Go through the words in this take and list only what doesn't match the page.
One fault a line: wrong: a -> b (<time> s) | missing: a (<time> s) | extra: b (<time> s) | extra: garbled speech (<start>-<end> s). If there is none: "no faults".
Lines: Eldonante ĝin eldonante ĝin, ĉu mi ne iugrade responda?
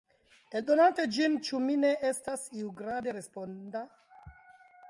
missing: eldonante ĝin (1.4 s)
extra: estas (2.1 s)